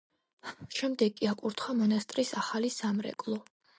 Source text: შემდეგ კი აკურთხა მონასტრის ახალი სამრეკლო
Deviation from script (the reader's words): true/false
false